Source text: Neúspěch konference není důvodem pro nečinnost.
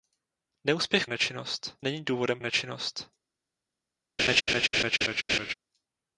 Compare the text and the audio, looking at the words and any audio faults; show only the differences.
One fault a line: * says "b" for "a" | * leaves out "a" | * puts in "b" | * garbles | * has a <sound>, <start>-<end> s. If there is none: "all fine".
* says "nečinnost" for "konference"
* leaves out "pro"
* has a laugh, 4.2-5.5 s